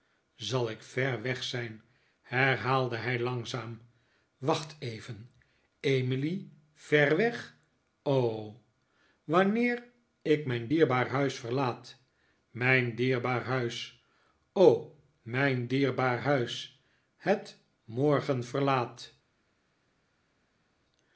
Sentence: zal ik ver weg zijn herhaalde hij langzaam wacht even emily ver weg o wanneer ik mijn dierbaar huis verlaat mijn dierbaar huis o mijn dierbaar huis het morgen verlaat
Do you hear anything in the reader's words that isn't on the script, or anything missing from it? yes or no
no